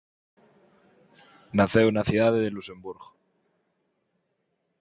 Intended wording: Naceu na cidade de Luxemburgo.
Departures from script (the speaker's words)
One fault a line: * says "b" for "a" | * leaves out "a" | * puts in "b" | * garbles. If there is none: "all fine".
all fine